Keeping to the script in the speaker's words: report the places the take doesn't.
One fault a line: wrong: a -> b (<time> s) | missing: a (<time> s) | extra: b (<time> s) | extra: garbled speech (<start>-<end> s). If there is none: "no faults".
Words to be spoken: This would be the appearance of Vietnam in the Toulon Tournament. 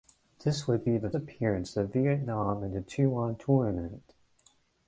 no faults